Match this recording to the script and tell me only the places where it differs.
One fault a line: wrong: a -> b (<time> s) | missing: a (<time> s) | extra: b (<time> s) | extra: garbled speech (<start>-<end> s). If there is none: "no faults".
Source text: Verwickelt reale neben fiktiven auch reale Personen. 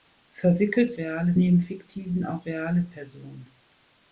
no faults